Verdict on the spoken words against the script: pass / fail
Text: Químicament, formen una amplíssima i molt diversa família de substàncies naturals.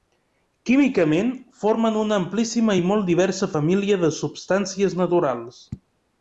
pass